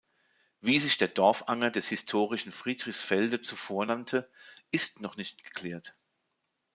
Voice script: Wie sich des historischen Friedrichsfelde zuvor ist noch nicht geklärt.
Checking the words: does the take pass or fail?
fail